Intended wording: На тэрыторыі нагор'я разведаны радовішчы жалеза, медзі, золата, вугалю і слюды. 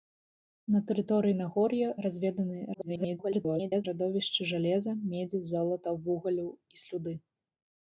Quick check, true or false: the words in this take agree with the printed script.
false